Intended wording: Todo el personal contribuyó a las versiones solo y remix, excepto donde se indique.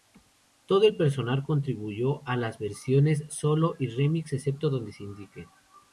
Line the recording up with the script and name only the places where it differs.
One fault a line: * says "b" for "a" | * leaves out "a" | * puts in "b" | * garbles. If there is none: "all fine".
all fine